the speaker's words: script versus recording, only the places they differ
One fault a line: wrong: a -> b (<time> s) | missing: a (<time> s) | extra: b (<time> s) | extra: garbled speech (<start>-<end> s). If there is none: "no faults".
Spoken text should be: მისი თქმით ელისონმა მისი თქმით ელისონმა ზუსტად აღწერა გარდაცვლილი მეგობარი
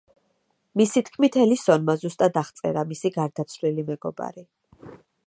missing: მისი თქმით ელისონმა (1.9 s)
extra: მისი (2.9 s)